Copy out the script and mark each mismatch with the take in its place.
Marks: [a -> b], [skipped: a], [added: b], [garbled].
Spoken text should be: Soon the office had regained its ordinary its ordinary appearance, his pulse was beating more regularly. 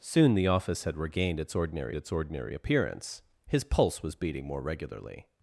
Soon the office had regained its ordinary its ordinary appearance, his pulse was beating more regularly.